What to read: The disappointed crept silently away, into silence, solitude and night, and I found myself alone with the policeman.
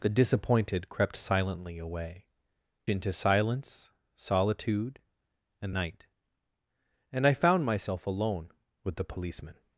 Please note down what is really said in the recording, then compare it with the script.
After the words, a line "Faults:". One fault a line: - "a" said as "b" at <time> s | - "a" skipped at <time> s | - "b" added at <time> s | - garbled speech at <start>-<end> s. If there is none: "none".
The disappointed crept silently away, into silence, solitude and night, and I found myself alone with the policeman.
Faults:
none